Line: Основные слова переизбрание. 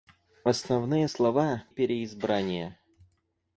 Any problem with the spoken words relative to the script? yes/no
no